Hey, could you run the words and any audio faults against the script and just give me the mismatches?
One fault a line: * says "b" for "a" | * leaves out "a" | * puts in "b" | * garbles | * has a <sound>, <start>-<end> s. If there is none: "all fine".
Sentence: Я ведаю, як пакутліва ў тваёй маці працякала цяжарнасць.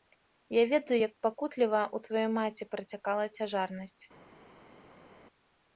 all fine